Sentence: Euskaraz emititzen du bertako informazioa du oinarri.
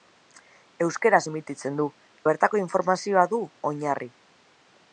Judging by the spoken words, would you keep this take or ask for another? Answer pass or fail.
pass